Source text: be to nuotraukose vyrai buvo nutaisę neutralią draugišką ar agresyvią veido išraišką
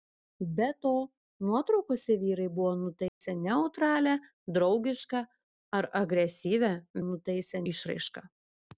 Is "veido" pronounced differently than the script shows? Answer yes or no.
yes